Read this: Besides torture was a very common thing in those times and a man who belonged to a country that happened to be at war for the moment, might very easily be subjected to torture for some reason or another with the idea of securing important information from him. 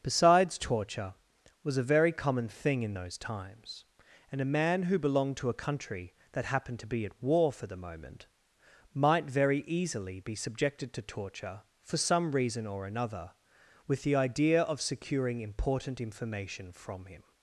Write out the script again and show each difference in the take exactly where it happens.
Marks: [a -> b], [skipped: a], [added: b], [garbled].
Besides torture was a very common thing in those times and a man who belonged to a country that happened to be at war for the moment, might very easily be subjected to torture for some reason or another with the idea of securing important information from him.